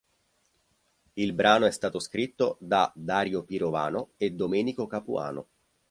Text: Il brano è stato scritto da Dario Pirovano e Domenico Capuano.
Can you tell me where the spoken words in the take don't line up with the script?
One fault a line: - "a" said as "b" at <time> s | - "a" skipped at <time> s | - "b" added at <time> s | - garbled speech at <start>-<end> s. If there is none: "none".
none